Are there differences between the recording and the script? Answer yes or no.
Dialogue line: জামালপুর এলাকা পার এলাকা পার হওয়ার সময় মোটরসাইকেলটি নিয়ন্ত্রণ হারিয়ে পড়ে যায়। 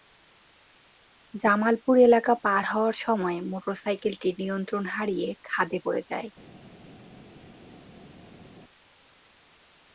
yes